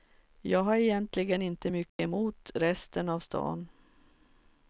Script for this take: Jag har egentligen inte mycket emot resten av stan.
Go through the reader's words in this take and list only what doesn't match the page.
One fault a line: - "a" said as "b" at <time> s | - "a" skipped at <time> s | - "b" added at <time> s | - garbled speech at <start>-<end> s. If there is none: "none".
none